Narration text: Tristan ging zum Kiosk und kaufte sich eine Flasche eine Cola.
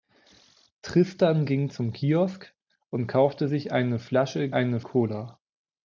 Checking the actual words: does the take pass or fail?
pass